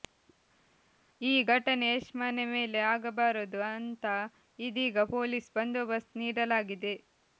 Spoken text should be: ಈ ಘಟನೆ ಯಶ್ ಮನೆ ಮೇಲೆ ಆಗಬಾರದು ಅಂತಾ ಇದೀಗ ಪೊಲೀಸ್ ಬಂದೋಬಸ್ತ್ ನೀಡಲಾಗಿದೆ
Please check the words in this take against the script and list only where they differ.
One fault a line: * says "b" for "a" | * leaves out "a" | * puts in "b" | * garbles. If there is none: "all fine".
all fine